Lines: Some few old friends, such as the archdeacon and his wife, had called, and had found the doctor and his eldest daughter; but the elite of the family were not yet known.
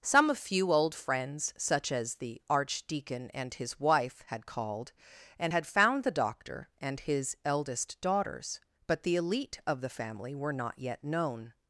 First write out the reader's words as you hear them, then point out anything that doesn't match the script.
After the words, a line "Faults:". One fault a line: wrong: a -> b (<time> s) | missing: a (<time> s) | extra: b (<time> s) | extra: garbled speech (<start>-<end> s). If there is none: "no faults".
Some few old friends, such as the archdeacon and his wife, had called, and had found the doctor and his eldest daughters; but the elite of the family were not yet known.
Faults:
wrong: daughter -> daughters (8.0 s)